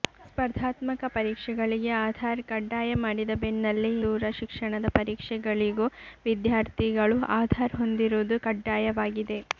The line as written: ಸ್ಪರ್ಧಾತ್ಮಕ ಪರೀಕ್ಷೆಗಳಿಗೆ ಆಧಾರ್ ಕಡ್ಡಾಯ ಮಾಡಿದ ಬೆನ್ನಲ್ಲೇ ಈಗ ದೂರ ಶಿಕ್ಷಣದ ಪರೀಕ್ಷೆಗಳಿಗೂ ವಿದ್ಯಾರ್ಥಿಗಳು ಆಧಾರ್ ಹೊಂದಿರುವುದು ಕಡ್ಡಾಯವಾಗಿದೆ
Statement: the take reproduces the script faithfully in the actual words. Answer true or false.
false